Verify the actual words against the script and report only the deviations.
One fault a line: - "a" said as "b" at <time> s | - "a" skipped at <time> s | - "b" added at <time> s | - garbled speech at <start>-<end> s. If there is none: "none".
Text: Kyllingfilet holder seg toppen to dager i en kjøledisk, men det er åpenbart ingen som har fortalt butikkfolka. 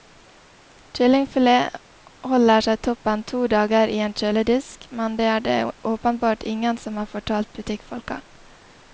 - "det" added at 5.5 s